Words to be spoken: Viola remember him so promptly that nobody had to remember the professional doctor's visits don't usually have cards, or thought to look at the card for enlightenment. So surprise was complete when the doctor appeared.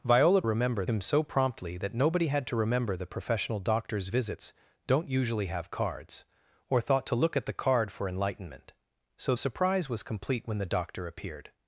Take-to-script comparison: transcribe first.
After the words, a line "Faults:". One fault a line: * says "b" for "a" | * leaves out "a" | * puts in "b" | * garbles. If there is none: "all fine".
Viola remember him so promptly that nobody had to remember the professional doctor's visits don't usually have cards, or thought to look at the card for enlightenment. So surprise was complete when the doctor appeared.
Faults:
all fine